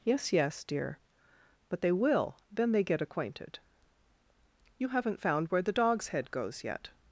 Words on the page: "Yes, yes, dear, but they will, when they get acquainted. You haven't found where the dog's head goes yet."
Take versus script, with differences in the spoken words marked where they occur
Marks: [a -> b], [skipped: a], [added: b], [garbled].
"Yes, yes, dear, but they will, [when -> then] they get acquainted. You haven't found where the dog's head goes yet."